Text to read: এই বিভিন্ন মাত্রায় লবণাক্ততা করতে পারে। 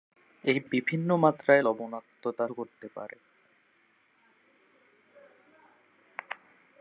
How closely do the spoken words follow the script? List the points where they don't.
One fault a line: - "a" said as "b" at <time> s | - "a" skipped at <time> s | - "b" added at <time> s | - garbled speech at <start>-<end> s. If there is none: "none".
none